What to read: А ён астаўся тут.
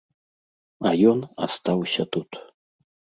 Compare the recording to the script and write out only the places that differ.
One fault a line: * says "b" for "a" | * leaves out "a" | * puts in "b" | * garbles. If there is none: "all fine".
all fine